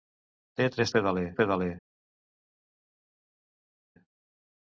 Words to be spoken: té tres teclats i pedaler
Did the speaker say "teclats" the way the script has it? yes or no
no